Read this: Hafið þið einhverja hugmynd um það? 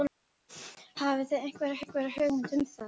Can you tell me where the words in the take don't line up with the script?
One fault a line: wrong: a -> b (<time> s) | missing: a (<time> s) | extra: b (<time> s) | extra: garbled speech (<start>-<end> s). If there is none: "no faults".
extra: einhverja (1.8 s)